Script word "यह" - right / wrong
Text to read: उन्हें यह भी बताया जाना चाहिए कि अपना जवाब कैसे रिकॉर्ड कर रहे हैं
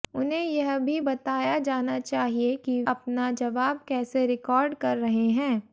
right